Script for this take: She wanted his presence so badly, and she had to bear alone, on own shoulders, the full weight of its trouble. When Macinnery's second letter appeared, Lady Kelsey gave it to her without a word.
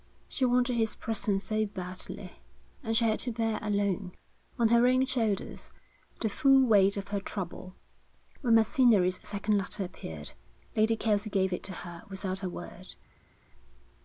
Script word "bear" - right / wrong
right